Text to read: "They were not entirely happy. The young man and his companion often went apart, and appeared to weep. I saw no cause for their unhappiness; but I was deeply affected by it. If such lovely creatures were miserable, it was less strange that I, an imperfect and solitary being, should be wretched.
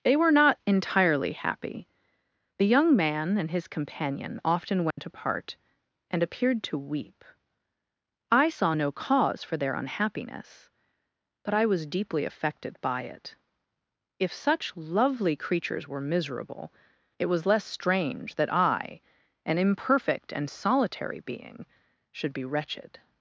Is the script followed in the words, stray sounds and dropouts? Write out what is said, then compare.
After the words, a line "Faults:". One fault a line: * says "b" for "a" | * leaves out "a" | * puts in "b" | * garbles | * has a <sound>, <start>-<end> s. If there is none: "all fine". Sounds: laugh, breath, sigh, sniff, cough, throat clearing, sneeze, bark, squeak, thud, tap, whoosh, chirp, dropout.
"They were not entirely happy. The young man and his companion often went apart, and appeared to weep. I saw no cause for their unhappiness; but I was deeply affected by it. If such lovely creatures were miserable, it was less strange that I, an imperfect and solitary being, should be wretched.
Faults:
* has a dropout, 4.9-5.0 s